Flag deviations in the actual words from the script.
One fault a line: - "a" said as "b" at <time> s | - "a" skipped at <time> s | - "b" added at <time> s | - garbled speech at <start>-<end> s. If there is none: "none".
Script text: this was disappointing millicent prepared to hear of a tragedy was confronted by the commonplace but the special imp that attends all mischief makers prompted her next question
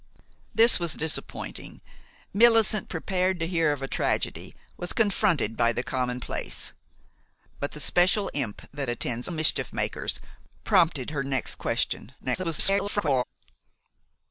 - "all" skipped at 9.3 s
- garbled speech at 12.2-13.2 s